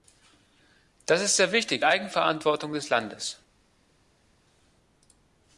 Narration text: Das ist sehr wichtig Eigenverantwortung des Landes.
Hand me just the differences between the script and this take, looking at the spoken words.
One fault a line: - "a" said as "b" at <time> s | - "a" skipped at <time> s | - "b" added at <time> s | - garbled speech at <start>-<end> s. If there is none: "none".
none